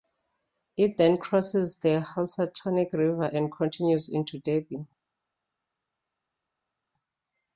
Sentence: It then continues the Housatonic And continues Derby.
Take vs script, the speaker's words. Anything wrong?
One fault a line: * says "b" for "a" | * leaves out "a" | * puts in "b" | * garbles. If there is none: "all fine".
* says "crosses" for "continues"
* puts in "River"
* puts in "into"